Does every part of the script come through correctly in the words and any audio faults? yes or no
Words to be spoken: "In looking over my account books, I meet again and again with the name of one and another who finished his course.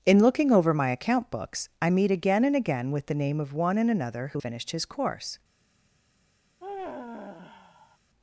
no